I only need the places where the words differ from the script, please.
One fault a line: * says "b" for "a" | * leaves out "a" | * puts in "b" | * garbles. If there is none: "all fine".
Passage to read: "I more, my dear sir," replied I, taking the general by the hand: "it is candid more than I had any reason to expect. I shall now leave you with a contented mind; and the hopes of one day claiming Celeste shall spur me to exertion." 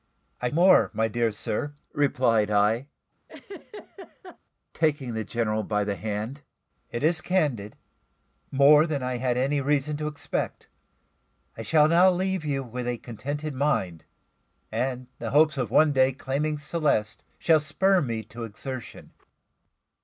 all fine